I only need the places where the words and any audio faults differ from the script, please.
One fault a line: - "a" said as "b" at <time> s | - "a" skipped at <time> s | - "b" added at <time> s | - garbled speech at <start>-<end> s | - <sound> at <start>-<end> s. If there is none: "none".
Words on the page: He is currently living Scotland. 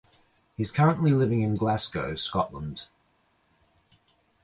- "in Glasgow" added at 1.4 s